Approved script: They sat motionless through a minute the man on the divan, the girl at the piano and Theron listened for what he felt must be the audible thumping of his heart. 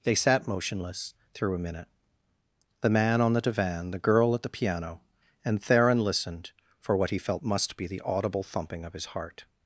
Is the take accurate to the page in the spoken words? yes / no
yes